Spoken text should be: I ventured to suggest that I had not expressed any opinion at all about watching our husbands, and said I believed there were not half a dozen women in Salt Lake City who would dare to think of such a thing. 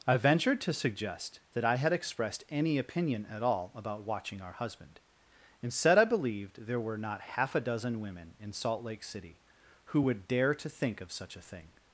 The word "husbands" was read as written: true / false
false